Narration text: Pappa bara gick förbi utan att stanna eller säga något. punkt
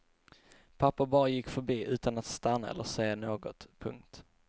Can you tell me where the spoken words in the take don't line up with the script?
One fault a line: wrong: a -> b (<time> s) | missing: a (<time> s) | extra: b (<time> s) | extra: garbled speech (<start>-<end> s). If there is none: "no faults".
no faults